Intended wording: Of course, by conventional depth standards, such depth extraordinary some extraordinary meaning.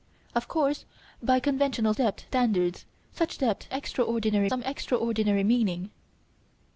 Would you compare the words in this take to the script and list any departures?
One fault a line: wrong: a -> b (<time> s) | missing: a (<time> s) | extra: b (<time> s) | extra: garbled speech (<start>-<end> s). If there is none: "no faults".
no faults